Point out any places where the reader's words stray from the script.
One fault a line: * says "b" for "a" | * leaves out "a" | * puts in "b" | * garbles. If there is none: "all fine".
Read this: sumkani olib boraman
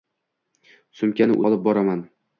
all fine